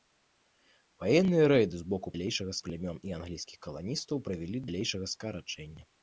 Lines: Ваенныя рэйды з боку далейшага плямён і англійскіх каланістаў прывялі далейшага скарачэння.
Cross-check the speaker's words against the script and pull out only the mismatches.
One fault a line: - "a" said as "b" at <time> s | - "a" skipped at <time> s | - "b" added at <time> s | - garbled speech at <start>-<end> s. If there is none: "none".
none